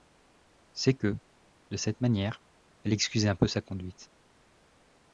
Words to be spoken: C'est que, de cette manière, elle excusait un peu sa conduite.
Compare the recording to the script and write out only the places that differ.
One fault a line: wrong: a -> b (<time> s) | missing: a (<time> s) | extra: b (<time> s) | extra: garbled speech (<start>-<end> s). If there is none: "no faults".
no faults